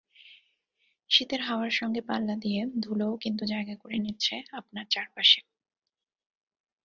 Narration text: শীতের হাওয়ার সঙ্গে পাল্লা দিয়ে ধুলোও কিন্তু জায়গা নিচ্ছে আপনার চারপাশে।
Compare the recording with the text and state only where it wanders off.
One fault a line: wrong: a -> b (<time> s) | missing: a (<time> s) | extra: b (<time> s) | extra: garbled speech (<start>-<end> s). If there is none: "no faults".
extra: করে (3.7 s)